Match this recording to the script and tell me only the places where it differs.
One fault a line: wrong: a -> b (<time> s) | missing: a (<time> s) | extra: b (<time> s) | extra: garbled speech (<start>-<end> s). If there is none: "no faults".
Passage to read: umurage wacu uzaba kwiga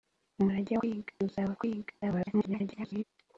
wrong: wacu -> kwiga (0.8 s)
extra: garbled speech (2.0-3.0 s)